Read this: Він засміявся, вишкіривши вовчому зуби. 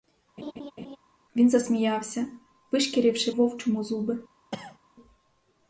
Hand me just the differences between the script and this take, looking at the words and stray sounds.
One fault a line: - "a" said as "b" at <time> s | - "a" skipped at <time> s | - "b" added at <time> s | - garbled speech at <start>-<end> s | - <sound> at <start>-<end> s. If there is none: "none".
- laugh at 0.4-1.0 s
- cough at 4.5-4.8 s